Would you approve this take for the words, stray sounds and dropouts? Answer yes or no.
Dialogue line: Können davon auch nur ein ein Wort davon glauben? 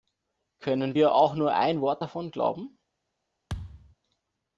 no